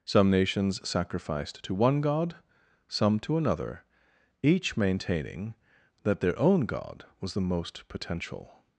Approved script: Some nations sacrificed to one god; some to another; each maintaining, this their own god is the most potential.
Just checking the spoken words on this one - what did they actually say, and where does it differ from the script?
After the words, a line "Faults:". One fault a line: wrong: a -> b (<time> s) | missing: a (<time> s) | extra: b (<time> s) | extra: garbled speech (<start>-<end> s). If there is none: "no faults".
Some nations sacrificed to one god; some to another; each maintaining, that their own god was the most potential.
Faults:
wrong: this -> that (6.0 s)
wrong: is -> was (7.2 s)